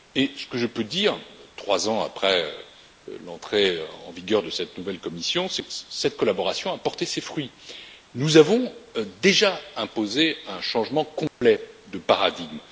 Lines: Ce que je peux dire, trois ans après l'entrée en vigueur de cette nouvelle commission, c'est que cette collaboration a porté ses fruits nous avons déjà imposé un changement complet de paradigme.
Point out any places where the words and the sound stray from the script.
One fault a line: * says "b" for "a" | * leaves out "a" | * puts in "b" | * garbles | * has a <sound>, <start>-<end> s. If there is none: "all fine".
* has a dropout, 11.3-11.4 s